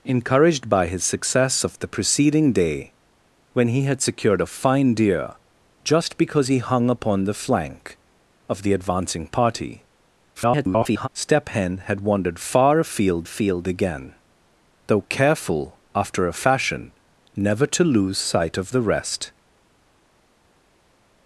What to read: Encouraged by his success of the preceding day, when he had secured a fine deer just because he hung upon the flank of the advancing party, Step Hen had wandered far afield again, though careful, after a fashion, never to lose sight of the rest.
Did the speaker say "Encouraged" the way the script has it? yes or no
yes